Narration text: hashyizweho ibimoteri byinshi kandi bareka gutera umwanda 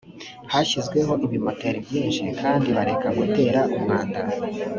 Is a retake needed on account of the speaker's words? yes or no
no